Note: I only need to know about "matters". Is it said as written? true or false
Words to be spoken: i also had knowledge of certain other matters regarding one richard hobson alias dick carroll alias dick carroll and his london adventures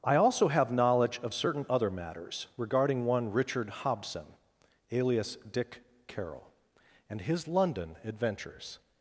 true